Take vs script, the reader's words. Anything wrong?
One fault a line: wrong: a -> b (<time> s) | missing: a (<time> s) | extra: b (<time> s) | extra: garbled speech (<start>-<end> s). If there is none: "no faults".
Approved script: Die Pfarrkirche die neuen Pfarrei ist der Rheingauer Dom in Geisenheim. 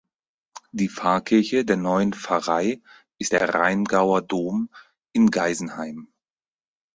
wrong: die -> der (1.6 s)